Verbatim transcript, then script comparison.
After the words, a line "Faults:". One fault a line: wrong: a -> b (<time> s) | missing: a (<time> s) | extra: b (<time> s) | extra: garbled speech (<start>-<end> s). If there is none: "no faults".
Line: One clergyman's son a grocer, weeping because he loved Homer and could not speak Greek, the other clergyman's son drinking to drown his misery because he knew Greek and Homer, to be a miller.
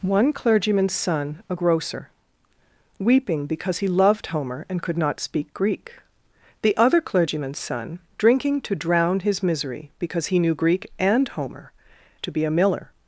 One clergyman's son a grocer, weeping because he loved Homer and could not speak Greek, the other clergyman's son drinking to drown his misery because he knew Greek and Homer, to be a miller.
Faults:
no faults